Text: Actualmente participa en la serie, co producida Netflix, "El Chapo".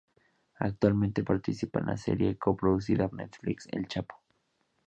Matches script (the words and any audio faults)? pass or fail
pass